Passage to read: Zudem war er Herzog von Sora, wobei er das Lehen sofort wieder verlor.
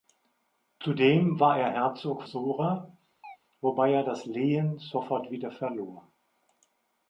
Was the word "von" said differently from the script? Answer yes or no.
yes